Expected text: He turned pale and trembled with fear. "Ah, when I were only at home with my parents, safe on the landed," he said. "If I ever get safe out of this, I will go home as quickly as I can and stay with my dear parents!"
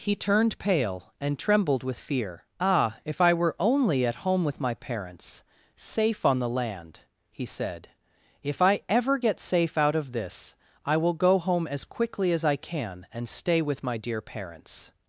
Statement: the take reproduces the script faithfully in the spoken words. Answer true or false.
false